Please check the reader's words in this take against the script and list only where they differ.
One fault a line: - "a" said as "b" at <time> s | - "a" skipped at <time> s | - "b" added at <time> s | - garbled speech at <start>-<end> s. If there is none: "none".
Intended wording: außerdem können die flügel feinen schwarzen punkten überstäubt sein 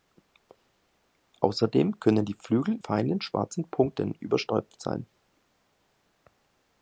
none